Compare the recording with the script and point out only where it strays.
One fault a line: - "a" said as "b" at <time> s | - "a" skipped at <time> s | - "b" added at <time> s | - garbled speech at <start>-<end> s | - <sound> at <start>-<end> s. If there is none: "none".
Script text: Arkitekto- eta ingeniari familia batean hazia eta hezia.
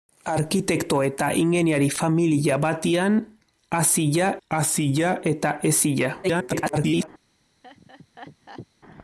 - "hazia" added at 4.5 s
- garbled speech at 6.2-7.1 s
- laugh at 7.6-8.7 s